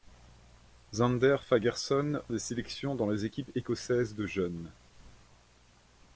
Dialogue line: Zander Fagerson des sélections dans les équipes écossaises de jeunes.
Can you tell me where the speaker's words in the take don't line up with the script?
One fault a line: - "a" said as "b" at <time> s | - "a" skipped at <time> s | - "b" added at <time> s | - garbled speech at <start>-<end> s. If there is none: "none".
none